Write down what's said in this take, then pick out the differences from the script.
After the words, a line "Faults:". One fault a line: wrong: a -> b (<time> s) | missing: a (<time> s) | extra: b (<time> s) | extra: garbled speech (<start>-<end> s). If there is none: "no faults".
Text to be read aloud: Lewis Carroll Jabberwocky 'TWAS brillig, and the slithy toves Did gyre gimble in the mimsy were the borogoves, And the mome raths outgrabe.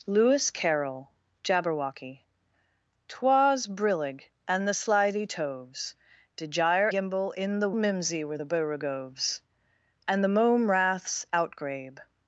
Lewis Carroll Jabberwocky 'TWAS brillig, and the slithy toves Did gyre gimble in the mimsy were the borogoves, And the mome raths outgrabe.
Faults:
no faults